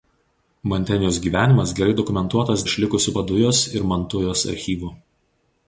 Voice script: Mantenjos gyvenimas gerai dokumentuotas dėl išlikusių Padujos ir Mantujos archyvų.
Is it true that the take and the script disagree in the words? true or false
true